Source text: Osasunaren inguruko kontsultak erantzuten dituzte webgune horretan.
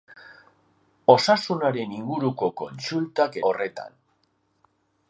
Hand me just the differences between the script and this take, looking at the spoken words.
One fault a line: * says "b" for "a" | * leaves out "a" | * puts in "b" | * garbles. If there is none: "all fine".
* leaves out "erantzuten dituzte webgune"